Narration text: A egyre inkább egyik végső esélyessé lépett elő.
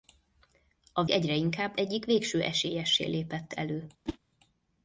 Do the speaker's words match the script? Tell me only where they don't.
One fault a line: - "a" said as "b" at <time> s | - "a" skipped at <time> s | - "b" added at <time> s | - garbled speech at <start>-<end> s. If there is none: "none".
none